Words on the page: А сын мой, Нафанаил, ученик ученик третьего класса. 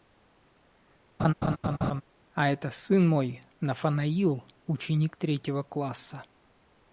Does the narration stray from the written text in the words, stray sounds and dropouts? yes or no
yes